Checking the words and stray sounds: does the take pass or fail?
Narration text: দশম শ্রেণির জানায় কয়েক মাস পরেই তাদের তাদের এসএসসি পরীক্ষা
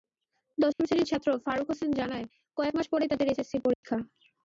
fail